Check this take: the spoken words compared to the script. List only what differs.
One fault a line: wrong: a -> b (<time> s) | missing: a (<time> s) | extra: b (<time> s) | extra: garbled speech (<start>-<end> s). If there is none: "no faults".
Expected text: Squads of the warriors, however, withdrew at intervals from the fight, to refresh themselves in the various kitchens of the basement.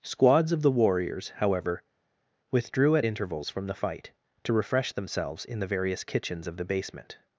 no faults